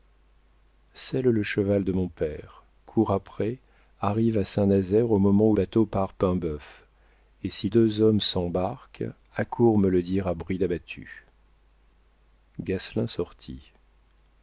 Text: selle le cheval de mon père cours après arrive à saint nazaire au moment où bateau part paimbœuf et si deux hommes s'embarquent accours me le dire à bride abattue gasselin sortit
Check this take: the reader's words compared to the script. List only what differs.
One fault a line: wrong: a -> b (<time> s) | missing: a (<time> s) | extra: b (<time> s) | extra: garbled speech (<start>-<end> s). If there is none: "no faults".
no faults